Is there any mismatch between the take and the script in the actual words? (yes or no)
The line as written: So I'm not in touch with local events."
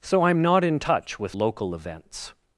no